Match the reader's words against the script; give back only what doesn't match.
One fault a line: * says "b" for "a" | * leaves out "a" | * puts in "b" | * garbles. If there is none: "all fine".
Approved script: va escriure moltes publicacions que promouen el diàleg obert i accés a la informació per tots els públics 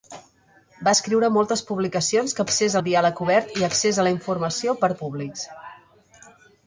* says "accés" for "promouen"
* leaves out "tots els"